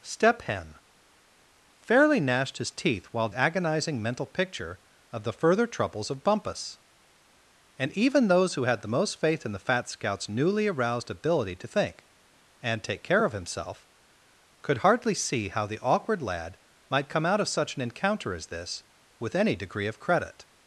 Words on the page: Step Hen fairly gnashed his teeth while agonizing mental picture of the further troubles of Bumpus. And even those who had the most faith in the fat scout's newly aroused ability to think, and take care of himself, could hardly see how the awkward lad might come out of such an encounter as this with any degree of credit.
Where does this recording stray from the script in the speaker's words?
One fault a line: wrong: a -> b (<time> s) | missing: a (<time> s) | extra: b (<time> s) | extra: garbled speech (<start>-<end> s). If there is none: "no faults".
no faults